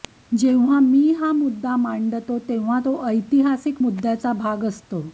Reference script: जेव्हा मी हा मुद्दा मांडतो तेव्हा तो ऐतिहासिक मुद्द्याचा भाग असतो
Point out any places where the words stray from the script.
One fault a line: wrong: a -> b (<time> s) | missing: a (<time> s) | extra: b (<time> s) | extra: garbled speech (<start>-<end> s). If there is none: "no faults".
no faults